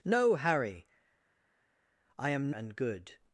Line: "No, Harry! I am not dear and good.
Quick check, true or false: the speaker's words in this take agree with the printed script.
false